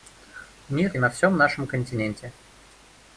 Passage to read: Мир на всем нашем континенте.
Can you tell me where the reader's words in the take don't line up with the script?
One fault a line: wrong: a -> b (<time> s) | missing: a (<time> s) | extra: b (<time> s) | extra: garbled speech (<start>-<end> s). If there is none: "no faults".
no faults